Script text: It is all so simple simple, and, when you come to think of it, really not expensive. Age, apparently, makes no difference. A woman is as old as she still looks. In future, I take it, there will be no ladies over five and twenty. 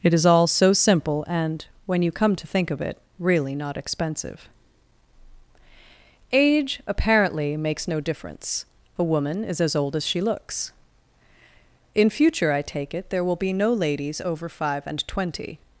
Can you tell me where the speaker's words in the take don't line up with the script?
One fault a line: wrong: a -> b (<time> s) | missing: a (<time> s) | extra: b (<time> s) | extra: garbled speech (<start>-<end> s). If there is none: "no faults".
missing: simple (1.2 s)
missing: still (10.2 s)